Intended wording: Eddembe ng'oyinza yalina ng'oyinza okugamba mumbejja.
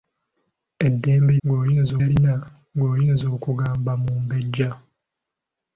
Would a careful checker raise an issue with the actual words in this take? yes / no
no